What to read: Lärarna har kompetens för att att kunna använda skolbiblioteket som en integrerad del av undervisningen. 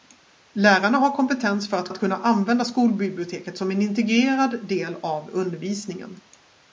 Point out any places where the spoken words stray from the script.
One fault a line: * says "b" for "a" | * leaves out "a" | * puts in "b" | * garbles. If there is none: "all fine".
all fine